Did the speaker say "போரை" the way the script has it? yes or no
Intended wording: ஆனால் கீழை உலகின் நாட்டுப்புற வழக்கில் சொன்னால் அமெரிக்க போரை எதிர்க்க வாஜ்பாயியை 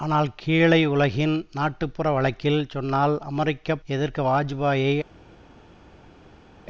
no